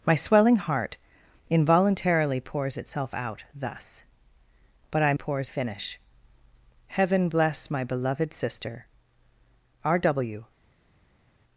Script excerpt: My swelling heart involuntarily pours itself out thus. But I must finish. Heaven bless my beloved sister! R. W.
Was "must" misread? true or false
true